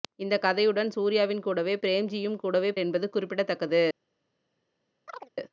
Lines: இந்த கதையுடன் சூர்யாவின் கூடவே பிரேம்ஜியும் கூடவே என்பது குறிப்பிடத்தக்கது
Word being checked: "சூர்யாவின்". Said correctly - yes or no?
yes